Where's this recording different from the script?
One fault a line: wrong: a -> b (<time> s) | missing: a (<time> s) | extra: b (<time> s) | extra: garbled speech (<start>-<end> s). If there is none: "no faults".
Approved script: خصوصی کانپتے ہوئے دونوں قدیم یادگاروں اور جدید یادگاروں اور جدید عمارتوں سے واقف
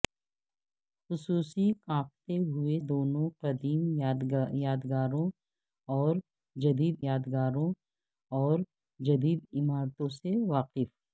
no faults